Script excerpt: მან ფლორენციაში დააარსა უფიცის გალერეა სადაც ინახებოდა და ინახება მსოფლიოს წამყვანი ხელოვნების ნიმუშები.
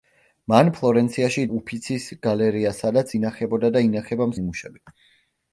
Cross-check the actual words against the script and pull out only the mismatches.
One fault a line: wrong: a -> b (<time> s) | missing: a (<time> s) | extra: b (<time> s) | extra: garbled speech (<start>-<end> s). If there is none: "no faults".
missing: დააარსა (1.4 s)
missing: მსოფლიოს წამყვანი ხელოვნების (4.3 s)